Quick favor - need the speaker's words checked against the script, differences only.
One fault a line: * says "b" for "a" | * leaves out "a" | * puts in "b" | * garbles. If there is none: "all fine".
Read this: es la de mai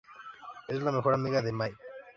* puts in "mejor amiga"